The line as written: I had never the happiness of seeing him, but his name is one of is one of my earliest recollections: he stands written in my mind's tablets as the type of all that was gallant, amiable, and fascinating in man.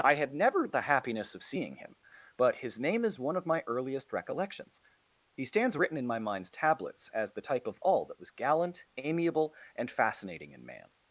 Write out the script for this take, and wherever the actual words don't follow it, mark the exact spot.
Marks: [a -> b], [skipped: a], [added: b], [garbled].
I had never the happiness of seeing him, but his name is one of [skipped: is one of] my earliest recollections: he stands written in my mind's tablets as the type of all that was gallant, amiable, and fascinating in man.